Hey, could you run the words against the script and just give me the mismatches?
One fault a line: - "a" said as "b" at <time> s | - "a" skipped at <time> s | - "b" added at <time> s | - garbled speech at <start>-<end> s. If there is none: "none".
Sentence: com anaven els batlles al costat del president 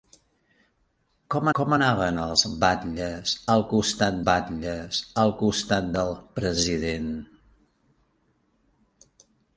- "com" added at 1.6 s
- "batlles al costat" added at 4.3 s